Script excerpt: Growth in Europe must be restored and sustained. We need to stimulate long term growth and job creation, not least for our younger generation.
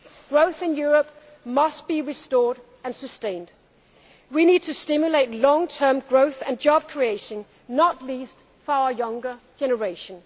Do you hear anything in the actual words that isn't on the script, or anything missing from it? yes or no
no